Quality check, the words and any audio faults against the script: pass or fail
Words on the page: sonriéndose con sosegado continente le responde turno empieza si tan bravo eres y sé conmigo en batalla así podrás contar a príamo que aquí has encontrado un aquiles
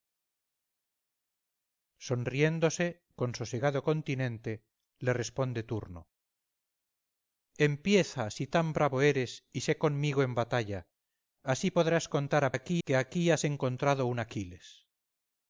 fail